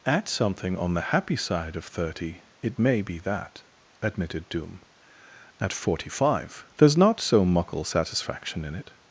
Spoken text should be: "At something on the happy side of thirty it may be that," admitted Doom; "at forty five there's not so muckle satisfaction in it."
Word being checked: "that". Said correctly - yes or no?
yes